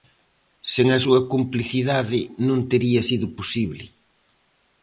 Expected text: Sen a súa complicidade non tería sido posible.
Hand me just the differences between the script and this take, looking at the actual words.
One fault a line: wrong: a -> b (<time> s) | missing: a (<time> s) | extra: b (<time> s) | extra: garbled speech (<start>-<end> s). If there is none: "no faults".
no faults